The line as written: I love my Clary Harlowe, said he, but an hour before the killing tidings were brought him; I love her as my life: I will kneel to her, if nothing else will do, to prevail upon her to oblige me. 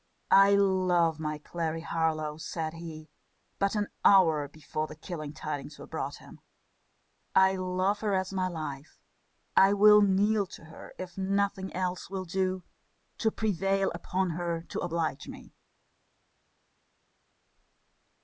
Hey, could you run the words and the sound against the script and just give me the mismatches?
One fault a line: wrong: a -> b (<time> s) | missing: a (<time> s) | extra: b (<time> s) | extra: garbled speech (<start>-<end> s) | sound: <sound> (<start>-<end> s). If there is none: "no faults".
no faults